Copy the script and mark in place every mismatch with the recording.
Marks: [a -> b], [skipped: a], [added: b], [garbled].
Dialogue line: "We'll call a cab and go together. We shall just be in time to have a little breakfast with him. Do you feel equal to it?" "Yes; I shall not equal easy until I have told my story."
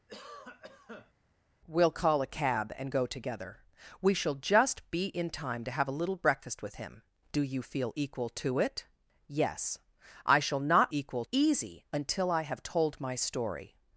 "We'll call a cab and go together. We shall just be in time to have a little breakfast with him. Do you feel equal to it?" "Yes; I shall not equal easy until I have told my story."